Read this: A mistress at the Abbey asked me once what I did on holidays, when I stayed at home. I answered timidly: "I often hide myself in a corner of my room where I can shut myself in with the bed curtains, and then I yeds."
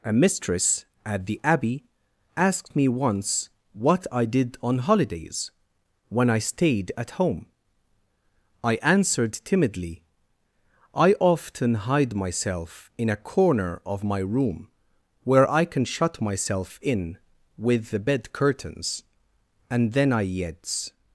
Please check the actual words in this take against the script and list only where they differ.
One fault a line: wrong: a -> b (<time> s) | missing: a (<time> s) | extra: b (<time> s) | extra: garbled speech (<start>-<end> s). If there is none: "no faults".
no faults